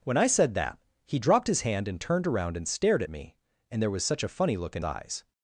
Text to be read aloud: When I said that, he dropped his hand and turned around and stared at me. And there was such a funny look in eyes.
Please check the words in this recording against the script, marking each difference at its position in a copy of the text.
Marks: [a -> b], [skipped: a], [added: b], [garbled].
When I said that, he dropped his hand and turned around and stared at me. And there was such a funny look in eyes.